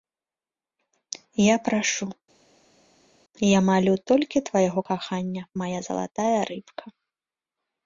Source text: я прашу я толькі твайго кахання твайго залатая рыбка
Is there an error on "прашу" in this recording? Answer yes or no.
no